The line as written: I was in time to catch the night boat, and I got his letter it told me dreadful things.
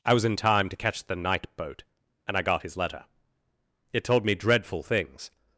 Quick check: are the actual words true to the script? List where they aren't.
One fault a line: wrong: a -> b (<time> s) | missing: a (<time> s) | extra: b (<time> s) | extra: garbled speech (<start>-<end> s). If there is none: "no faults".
no faults